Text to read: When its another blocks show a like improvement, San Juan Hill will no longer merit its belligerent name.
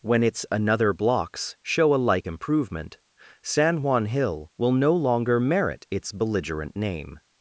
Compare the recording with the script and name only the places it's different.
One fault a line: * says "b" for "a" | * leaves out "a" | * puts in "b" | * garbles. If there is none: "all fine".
all fine